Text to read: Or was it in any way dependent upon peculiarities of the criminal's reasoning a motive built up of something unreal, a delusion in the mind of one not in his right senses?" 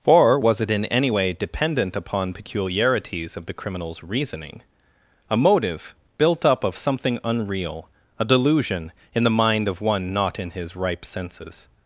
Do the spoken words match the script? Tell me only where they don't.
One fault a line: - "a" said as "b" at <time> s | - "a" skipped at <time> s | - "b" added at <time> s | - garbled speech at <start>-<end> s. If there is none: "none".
- "right" said as "ripe" at 10.8 s